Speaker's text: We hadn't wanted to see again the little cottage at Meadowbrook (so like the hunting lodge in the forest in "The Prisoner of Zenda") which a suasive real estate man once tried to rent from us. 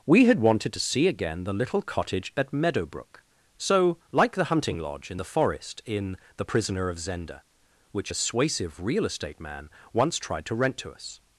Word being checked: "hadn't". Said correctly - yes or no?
no